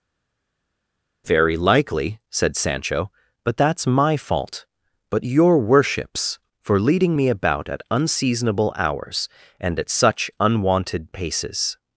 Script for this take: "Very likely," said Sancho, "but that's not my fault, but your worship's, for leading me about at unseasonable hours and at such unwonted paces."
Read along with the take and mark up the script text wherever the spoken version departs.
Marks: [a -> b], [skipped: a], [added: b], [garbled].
"Very likely," said Sancho, "but that's [skipped: not] my fault, but your worship's, for leading me about at unseasonable hours and at such unwonted paces."